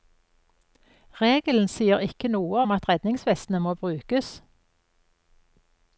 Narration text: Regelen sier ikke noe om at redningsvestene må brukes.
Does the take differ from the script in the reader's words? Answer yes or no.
no